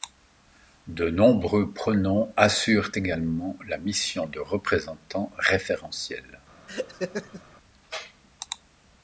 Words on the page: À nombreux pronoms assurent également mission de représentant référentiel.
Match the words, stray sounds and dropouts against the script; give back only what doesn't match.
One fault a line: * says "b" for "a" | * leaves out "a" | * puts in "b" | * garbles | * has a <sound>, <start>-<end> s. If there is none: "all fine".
* says "De" for "À"
* puts in "la"
* has a laugh, 6.7-7.4 s